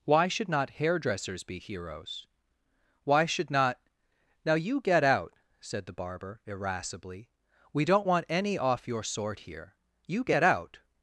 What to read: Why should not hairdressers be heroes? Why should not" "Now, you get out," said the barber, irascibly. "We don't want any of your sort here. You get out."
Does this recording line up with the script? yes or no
no